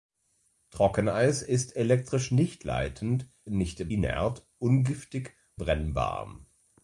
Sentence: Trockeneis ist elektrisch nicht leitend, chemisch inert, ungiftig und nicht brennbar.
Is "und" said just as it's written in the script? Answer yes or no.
no